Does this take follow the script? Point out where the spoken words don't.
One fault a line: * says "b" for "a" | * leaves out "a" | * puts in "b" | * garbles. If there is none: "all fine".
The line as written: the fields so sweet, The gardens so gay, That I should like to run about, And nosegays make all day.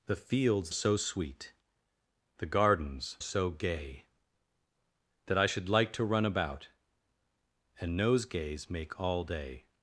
all fine